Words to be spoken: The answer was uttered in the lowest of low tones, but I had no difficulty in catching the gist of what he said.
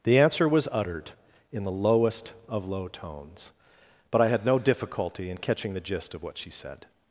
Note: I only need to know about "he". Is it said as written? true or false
false